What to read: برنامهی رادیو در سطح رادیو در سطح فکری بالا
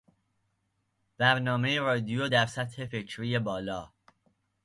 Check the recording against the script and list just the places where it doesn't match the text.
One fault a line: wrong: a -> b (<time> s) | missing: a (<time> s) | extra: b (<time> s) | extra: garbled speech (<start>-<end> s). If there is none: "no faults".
missing: رادیو در سطح (2.8 s)